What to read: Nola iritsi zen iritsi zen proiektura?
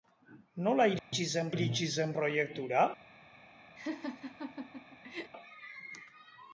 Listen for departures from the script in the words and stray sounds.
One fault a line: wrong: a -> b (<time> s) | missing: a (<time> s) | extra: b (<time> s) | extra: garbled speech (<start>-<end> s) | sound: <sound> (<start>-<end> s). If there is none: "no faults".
sound: dropout (1.0-1.1 s)
sound: laugh (3.8-5.3 s)